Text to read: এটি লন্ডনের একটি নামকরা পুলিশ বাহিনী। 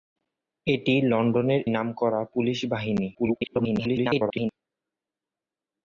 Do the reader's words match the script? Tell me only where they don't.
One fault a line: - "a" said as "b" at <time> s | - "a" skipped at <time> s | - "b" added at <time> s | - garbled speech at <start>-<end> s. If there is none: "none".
- "একটি" skipped at 1.6 s
- garbled speech at 3.1-4.5 s